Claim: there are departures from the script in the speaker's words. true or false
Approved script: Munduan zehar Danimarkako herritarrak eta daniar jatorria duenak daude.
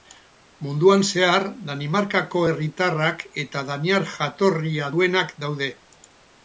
false